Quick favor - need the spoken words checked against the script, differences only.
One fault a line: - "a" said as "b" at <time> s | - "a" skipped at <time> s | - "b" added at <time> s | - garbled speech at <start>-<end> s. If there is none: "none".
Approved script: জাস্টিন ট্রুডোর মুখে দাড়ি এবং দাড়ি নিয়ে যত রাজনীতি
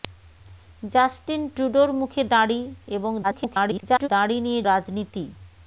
- garbled speech at 3.2-4.1 s
- "যত" skipped at 4.6 s